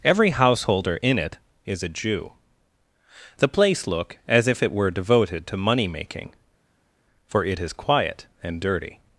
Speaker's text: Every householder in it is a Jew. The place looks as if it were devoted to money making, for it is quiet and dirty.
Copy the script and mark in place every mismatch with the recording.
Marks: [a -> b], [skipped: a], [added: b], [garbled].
Every householder in it is a Jew. The place [looks -> look] as if it were devoted to money making, for it is quiet and dirty.